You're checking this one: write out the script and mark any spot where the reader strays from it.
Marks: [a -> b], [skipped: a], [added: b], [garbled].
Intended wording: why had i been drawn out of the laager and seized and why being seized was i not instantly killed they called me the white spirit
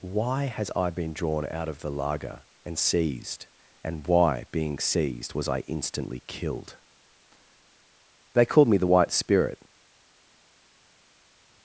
why [had -> has] i been drawn out of the laager and seized and why being seized was i [skipped: not] instantly killed they called me the white spirit